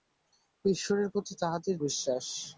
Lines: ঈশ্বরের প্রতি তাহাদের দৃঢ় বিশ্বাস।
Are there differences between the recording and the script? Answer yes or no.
yes